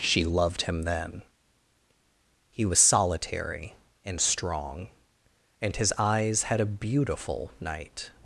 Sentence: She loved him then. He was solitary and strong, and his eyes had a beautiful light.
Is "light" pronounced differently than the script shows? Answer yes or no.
yes